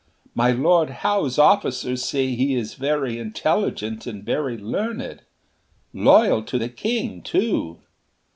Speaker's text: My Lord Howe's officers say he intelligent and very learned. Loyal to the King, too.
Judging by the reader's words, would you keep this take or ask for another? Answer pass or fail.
fail